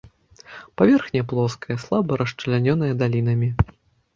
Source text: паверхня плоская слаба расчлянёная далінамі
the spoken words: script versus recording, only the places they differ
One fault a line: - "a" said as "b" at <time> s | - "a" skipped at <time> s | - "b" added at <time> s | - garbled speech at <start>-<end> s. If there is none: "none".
none